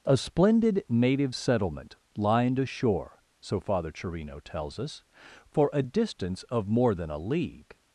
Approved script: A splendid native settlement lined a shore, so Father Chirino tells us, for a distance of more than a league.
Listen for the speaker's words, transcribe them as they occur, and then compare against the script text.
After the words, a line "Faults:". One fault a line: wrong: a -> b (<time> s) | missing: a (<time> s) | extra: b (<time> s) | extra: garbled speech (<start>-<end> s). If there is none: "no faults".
A splendid native settlement lined a shore, so Father Chirino tells us, for a distance of more than a league.
Faults:
no faults